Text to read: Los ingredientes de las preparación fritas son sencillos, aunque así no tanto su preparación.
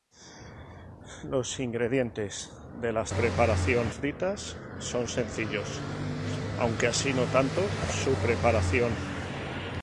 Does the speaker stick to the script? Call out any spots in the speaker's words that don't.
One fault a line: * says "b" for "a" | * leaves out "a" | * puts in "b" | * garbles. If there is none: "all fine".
all fine